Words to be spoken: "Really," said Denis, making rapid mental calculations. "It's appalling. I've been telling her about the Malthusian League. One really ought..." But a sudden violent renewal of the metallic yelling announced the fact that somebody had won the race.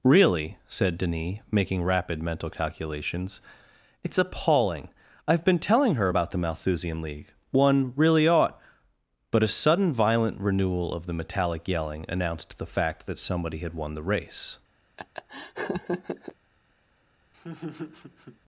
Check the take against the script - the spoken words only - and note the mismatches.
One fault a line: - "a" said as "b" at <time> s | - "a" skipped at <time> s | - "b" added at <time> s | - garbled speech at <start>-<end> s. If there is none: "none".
none